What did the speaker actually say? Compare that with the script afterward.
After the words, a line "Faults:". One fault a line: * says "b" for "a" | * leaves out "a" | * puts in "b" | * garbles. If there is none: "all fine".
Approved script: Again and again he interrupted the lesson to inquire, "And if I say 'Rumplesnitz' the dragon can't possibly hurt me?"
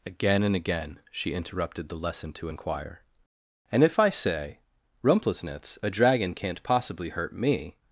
Again and again she interrupted the lesson to inquire, "And if I say 'Rumplesnitz' a dragon can't possibly hurt me?"
Faults:
* says "she" for "he"
* says "a" for "the"